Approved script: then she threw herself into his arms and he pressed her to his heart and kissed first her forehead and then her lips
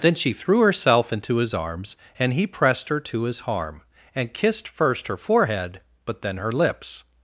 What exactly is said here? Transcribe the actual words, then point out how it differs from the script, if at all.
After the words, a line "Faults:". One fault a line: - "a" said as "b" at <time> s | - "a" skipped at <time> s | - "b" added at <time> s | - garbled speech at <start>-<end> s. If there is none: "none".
then she threw herself into his arms and he pressed her to his harm and kissed first her forehead but then her lips
Faults:
- "heart" said as "harm" at 3.4 s
- "and" said as "but" at 6.1 s